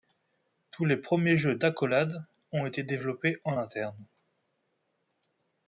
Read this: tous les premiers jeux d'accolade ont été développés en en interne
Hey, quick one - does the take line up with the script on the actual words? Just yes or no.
no